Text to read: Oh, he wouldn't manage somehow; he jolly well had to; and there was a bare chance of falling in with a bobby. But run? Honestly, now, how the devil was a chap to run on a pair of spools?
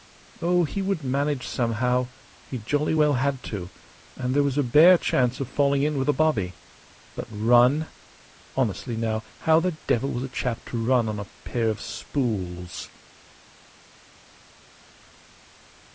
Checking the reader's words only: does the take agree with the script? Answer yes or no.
no